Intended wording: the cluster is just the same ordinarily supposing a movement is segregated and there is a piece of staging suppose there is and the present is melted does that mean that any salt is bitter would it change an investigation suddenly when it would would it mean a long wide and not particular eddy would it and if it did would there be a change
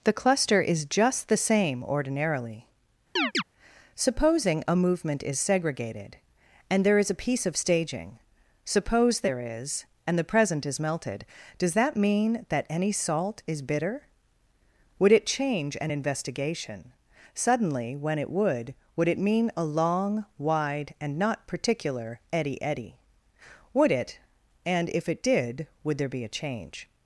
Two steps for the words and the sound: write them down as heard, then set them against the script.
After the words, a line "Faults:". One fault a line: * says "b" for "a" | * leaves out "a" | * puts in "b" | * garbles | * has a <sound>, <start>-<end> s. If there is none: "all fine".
the cluster is just the same ordinarily supposing a movement is segregated and there is a piece of staging suppose there is and the present is melted does that mean that any salt is bitter would it change an investigation suddenly when it would would it mean a long wide and not particular eddy eddy would it and if it did would there be a change
Faults:
* has a chirp, 3.2-3.4 s
* puts in "eddy"